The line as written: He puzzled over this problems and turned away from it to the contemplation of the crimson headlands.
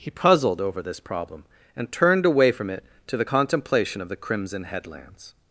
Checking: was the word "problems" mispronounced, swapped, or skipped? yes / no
yes